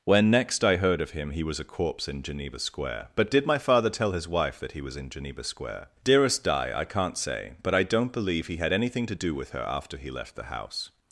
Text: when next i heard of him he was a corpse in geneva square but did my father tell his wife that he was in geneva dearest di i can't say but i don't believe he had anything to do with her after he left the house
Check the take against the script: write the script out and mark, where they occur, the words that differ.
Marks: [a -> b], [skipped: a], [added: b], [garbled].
when next i heard of him he was a corpse in geneva square but did my father tell his wife that he was in geneva [added: square] dearest di i can't say but i don't believe he had anything to do with her after he left the house